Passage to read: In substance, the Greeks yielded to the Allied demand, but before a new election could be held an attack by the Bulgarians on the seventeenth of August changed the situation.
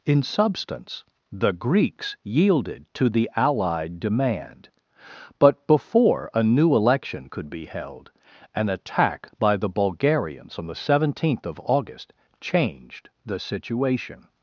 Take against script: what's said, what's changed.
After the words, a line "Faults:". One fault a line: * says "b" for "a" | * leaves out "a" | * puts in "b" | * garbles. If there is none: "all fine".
In substance, the Greeks yielded to the Allied demand, but before a new election could be held an attack by the Bulgarians on the seventeenth of August changed the situation.
Faults:
all fine